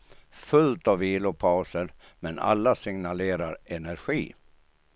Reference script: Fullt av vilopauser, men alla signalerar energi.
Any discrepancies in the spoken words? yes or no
no